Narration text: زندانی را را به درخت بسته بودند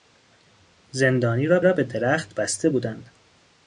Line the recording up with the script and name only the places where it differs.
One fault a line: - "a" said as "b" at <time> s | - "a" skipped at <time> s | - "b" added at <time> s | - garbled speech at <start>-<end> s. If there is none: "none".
none